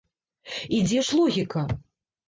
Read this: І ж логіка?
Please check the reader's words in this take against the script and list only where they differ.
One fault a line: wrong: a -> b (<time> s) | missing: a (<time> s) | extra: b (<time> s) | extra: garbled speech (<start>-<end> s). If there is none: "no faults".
extra: дзе (0.8 s)